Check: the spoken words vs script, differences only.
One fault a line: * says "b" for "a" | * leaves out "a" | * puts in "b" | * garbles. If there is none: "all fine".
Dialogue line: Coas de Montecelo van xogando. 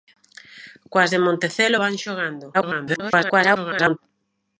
* garbles